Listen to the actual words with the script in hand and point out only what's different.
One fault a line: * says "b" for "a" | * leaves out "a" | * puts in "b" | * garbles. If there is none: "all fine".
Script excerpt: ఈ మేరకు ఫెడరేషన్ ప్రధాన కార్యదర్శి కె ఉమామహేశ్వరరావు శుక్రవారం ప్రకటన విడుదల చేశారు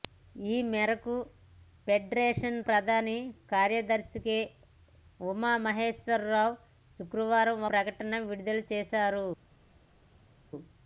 all fine